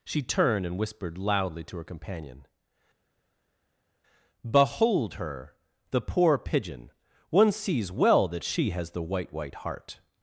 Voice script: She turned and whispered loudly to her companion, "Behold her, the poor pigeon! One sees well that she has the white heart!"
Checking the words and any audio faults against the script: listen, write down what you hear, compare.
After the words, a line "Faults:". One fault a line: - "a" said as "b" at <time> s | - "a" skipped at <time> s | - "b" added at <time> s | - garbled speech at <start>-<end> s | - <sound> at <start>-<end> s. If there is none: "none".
She turned and whispered loudly to her companion, "Behold her, the poor pigeon! One sees well that she has the white white heart!"
Faults:
- "white" added at 9.3 s